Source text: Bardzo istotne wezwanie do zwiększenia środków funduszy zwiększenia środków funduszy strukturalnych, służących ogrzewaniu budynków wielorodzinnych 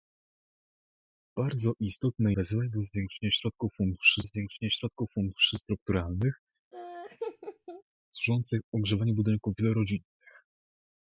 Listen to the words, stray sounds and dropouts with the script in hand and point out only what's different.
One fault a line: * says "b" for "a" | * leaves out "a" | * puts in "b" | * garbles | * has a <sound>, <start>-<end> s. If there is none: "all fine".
* has a laugh, 6.7-7.8 s